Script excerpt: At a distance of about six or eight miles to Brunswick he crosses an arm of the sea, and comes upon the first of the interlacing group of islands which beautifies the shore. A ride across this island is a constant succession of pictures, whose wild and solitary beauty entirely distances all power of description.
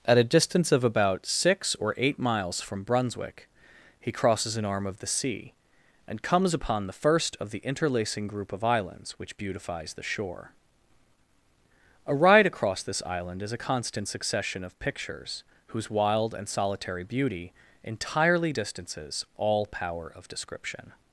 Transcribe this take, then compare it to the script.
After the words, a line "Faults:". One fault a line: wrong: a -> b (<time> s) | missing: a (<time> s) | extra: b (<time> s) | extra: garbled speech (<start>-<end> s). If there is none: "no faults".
At a distance of about six or eight miles from Brunswick he crosses an arm of the sea, and comes upon the first of the interlacing group of islands which beautifies the shore. A ride across this island is a constant succession of pictures, whose wild and solitary beauty entirely distances all power of description.
Faults:
wrong: to -> from (2.6 s)